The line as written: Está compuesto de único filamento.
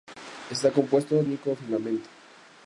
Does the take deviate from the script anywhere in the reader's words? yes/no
no